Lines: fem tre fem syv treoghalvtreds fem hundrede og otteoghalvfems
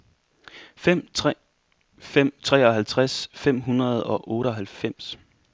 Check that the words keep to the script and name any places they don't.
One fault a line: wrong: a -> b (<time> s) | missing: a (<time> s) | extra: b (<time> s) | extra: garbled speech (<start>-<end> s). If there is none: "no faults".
missing: syv (2.3 s)